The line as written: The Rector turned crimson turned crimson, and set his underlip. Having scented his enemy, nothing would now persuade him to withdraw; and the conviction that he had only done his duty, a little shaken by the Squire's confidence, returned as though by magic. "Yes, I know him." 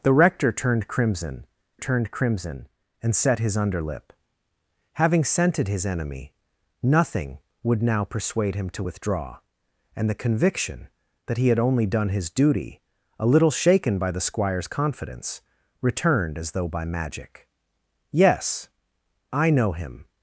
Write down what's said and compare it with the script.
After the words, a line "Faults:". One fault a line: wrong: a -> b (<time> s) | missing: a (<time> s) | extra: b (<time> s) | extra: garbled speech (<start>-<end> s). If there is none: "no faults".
The Rector turned crimson turned crimson, and set his underlip. Having scented his enemy, nothing would now persuade him to withdraw; and the conviction that he had only done his duty, a little shaken by the Squire's confidence, returned as though by magic. "Yes, I know him."
Faults:
no faults